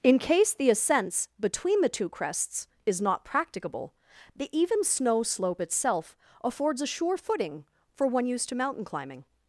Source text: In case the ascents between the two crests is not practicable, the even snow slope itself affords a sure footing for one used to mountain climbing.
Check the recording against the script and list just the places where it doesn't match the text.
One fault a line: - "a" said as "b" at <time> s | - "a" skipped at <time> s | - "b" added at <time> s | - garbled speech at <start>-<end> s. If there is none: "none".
none